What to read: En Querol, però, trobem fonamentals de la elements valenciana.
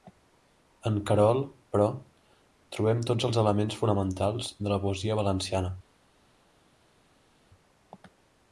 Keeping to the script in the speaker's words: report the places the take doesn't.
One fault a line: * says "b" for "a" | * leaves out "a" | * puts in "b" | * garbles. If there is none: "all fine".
* puts in "tots els elements"
* says "poesia" for "elements"